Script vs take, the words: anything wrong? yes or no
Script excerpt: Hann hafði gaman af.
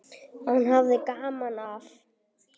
no